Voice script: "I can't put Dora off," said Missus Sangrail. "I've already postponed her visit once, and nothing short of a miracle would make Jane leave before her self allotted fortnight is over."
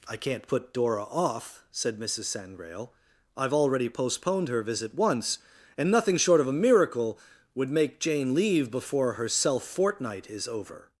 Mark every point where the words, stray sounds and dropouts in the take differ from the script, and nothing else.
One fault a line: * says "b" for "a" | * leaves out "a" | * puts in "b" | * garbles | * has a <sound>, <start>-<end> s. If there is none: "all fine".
* leaves out "allotted"